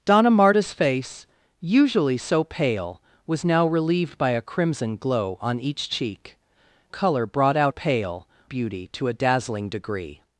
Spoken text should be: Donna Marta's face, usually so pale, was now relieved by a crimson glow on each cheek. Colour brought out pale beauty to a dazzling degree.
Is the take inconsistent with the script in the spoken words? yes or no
no